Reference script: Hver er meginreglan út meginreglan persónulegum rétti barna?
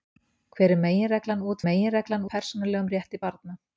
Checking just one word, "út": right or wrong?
right